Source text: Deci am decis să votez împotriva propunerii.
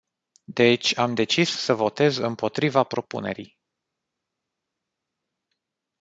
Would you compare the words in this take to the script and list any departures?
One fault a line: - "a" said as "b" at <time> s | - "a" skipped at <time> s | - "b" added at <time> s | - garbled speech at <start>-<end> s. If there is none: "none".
none